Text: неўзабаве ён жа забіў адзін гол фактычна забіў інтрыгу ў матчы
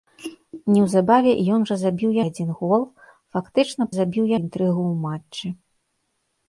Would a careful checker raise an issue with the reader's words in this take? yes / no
no